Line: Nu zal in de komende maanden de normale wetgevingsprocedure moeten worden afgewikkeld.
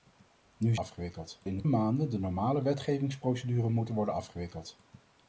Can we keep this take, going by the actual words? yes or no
no